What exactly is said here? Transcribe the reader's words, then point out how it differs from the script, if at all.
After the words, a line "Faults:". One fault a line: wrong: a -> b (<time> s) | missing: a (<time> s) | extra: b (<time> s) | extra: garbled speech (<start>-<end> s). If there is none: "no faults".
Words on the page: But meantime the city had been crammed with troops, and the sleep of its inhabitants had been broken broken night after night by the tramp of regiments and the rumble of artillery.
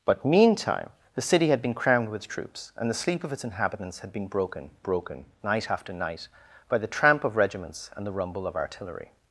But meantime the city had been crammed with troops, and the sleep of its inhabitants had been broken broken night after night by the tramp of regiments and the rumble of artillery.
Faults:
no faults